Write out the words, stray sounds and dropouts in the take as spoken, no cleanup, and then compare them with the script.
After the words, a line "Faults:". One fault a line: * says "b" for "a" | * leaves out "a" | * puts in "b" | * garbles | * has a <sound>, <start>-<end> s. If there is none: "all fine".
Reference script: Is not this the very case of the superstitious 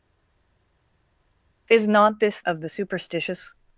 Is not this of the superstitious
Faults:
* leaves out "the very case"